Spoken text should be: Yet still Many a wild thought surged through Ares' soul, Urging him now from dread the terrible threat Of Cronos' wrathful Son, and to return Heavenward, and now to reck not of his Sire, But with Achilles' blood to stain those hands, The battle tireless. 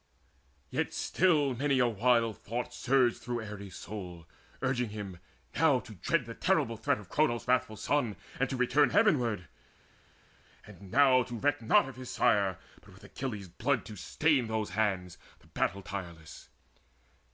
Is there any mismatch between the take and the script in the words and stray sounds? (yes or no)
yes